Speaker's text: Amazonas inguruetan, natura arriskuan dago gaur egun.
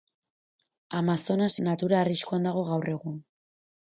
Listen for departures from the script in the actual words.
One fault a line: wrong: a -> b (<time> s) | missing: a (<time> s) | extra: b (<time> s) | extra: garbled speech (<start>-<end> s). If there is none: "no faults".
missing: inguruetan (1.5 s)